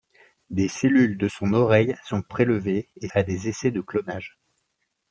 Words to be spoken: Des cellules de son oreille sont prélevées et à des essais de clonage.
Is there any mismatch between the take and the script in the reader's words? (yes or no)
no